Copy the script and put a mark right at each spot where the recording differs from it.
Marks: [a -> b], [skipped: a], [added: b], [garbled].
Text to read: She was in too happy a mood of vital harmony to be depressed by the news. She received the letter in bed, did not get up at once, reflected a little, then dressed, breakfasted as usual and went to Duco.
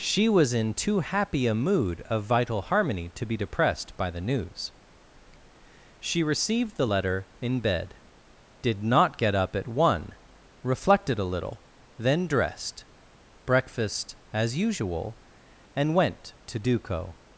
She was in too happy a mood of vital harmony to be depressed by the news. She received the letter in bed, did not get up at [once, -> one] reflected a little, then dressed, [breakfasted -> breakfast] as usual and went to Duco.